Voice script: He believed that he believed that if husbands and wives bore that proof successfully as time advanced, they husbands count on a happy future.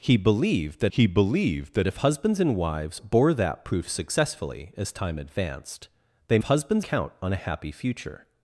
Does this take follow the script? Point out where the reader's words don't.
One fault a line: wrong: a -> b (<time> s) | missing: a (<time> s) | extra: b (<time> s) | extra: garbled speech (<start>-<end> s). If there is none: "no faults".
no faults